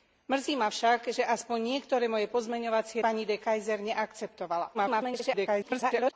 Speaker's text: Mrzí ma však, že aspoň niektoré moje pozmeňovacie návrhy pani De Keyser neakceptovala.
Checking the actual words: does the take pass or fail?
fail